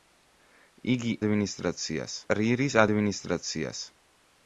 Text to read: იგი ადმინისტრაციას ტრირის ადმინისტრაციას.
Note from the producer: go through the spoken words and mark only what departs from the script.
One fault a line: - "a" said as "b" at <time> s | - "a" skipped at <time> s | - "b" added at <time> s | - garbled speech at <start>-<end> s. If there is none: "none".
none